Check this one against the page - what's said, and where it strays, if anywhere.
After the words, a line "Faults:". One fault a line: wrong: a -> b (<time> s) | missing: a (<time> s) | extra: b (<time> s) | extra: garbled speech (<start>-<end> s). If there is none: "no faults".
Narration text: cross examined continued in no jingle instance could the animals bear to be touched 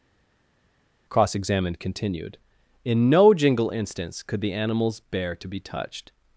cross examined continued in no jingle instance could the animals bear to be touched
Faults:
no faults